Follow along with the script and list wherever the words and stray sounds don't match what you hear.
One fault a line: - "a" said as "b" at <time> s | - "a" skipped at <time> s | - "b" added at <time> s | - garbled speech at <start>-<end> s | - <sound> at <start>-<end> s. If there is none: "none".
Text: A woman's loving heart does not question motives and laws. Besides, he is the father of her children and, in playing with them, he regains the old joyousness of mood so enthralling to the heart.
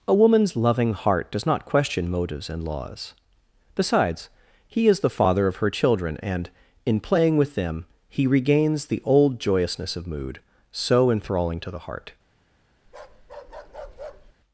- bark at 12.8-14.3 s